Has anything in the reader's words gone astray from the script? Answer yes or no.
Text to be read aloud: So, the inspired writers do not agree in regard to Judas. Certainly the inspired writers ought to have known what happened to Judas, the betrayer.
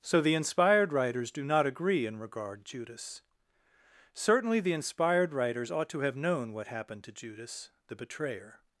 yes